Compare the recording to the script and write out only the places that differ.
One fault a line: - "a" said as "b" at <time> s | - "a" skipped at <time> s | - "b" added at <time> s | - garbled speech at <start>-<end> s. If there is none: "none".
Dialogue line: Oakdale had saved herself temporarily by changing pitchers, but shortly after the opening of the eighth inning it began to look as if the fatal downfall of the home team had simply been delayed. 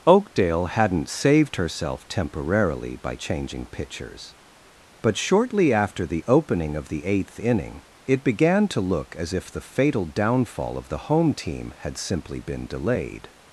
- "had" said as "hadn't" at 0.7 s